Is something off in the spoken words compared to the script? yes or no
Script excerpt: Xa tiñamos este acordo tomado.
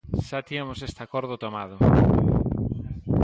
no